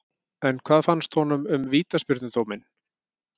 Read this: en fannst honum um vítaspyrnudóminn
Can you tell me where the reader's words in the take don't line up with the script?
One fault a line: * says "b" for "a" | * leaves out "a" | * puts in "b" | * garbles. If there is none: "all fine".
* puts in "hvað"